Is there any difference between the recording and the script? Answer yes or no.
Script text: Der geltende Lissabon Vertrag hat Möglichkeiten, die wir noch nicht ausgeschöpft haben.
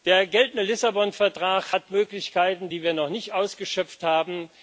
no